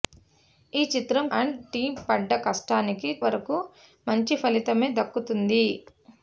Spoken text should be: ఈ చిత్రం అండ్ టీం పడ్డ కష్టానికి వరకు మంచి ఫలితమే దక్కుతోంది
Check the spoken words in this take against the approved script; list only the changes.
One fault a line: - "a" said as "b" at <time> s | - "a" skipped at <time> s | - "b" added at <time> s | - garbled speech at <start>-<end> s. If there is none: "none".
none